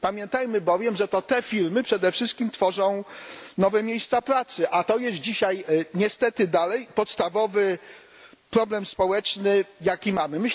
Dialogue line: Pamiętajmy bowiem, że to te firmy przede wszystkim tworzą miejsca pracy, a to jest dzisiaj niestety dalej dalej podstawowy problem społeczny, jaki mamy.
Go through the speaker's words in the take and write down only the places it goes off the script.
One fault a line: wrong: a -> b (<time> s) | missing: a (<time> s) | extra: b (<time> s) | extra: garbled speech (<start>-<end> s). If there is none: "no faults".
extra: nowe (3.6 s)
missing: dalej (6.9 s)